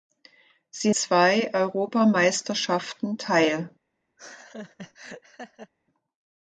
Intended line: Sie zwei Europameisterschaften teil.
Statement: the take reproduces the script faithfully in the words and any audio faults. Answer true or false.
false